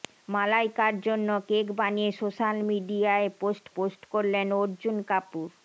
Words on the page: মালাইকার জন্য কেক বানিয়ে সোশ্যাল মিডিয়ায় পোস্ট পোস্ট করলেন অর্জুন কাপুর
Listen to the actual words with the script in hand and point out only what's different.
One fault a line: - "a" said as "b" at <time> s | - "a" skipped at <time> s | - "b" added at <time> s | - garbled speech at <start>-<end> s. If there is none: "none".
none